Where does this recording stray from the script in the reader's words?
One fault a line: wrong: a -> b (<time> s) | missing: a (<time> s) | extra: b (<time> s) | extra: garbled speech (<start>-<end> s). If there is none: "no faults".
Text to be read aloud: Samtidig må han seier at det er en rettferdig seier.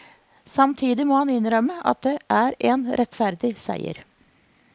wrong: seier -> innrømme (1.3 s)